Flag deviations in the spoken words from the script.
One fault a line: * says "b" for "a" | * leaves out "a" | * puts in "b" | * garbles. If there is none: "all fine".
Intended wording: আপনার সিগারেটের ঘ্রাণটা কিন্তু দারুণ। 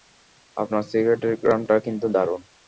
all fine